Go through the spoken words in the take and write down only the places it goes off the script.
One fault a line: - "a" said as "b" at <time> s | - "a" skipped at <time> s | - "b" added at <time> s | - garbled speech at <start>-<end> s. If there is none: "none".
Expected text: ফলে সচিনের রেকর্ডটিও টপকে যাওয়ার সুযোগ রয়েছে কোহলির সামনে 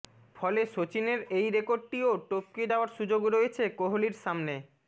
- "এই" added at 1.4 s